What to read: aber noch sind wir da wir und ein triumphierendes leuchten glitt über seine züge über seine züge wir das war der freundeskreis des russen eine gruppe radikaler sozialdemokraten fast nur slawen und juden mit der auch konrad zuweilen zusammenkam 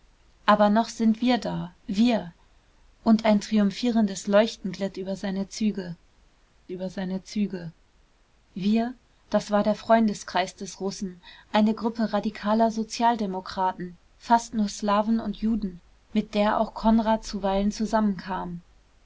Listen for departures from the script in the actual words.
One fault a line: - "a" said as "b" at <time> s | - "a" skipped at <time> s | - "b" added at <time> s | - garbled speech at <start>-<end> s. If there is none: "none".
none